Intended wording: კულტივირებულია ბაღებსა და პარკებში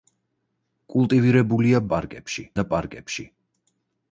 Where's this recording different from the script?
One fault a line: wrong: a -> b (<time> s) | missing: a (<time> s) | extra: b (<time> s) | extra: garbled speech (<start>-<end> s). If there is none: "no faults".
wrong: ბაღებსა -> პარკებში (1.9 s)